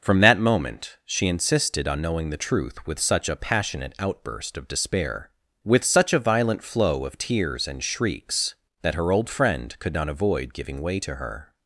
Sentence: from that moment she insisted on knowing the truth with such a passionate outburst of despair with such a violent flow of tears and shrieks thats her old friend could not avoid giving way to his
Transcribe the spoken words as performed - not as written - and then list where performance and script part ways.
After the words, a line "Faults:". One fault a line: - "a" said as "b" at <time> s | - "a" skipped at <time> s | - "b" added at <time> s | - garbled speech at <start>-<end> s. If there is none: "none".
from that moment she insisted on knowing the truth with such a passionate outburst of despair with such a violent flow of tears and shrieks that her old friend could not avoid giving way to her
Faults:
- "thats" said as "that" at 8.8 s
- "his" said as "her" at 11.1 s